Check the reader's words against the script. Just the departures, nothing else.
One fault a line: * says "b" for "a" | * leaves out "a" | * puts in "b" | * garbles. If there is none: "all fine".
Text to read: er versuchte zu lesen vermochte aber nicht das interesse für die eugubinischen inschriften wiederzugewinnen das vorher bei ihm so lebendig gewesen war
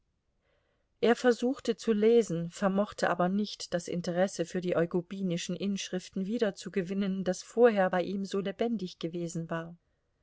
all fine